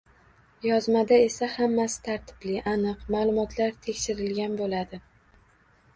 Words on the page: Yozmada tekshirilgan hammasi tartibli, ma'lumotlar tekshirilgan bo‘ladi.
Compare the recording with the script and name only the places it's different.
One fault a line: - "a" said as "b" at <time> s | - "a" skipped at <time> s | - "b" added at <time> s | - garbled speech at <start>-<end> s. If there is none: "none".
- "tekshirilgan" said as "esa" at 1.2 s
- "aniq" added at 2.7 s